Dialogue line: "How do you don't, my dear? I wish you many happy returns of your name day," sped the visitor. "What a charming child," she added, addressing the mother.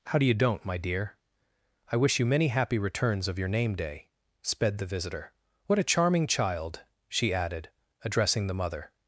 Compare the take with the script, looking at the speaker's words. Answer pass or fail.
pass